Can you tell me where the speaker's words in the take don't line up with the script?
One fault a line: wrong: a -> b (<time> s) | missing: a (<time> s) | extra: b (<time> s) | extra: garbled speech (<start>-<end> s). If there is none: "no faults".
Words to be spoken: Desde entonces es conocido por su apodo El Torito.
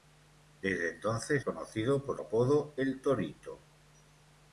missing: es (1.4 s)
missing: su (2.2 s)